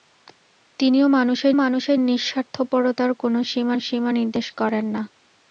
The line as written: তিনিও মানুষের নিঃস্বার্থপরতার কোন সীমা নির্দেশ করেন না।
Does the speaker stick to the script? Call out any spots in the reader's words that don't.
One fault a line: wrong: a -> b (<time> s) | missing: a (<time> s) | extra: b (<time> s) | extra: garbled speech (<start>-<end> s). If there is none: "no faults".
extra: মানুষের (1.5 s)
extra: সীমা (3.8 s)